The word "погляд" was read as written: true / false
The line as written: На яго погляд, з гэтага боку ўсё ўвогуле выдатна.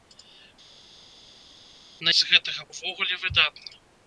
false